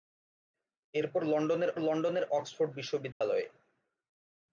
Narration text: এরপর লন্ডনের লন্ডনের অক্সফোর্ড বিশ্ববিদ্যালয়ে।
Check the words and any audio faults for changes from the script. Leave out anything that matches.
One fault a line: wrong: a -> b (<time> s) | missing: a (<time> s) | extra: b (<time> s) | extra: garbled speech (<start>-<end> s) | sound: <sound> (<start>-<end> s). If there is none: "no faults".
sound: dropout (3.1-3.2 s)